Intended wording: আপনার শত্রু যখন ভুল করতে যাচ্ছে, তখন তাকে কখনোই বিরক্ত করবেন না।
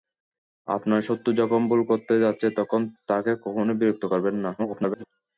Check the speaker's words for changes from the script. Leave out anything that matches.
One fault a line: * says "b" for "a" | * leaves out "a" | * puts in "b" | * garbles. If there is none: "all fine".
* garbles